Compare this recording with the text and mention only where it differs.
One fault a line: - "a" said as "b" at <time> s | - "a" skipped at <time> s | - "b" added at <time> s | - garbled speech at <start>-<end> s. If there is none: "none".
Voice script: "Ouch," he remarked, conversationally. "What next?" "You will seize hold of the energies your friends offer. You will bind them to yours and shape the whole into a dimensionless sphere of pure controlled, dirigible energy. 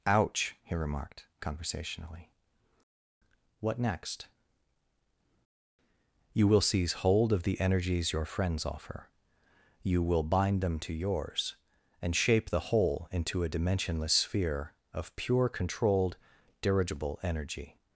none